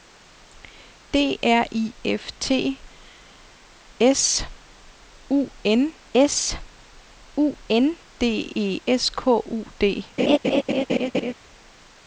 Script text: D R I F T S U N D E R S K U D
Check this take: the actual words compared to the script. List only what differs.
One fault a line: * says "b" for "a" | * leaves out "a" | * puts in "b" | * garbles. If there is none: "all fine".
* puts in "S U N"
* leaves out "R"